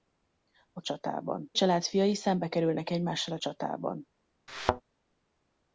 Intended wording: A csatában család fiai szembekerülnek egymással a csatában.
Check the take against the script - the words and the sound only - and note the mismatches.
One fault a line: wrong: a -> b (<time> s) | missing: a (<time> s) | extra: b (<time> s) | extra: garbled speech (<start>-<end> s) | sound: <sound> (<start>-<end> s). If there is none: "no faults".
sound: thud (4.5-4.8 s)